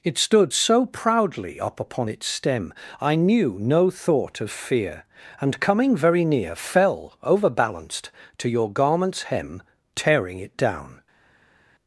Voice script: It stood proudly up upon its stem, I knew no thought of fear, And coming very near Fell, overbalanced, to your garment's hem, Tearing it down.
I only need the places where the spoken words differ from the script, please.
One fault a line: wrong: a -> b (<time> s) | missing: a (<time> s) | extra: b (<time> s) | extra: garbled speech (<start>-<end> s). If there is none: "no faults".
extra: so (0.5 s)